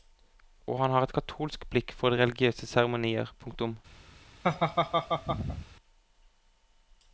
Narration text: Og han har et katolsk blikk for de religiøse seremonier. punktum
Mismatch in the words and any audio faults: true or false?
true